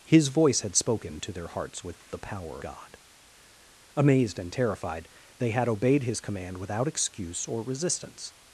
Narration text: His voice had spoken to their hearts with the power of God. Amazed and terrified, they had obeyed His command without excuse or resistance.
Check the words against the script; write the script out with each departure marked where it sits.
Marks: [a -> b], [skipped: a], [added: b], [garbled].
His voice had spoken to their hearts with the power [skipped: of] God. Amazed and terrified, they had obeyed His command without excuse or resistance.